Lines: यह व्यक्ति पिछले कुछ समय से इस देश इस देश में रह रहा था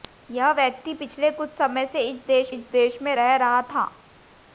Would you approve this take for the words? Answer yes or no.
yes